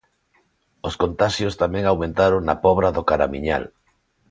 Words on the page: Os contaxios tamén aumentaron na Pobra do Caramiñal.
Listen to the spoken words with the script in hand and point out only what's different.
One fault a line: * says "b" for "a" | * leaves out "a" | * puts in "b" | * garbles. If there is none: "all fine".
all fine